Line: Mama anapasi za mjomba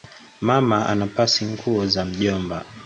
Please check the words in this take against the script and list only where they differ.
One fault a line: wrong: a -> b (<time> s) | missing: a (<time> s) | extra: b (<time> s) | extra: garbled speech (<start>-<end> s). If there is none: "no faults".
extra: nguo (1.4 s)